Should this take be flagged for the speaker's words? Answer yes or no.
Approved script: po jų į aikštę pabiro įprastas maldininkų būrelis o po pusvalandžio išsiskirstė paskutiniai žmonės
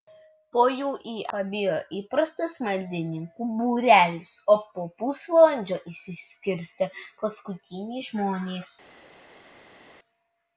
yes